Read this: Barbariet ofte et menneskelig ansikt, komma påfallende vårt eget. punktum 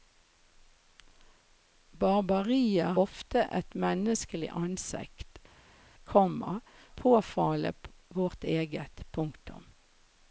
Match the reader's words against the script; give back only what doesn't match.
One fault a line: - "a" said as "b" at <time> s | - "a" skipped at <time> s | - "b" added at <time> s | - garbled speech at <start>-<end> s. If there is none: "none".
none